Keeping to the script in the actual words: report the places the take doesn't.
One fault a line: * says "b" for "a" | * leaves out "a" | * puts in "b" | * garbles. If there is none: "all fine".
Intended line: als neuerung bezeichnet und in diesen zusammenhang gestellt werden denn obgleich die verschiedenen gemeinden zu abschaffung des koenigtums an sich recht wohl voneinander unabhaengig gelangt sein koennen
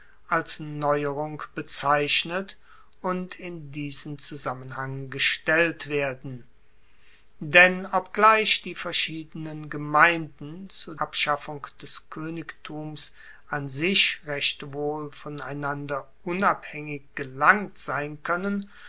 all fine